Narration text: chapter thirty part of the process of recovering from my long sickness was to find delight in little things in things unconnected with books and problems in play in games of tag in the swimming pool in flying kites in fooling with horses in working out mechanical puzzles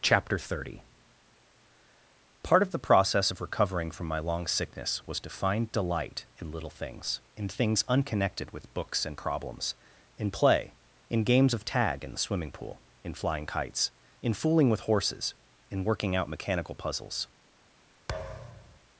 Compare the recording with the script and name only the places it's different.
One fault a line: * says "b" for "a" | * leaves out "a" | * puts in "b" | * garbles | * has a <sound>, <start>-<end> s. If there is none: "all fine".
* has a thud, 18.1-18.8 s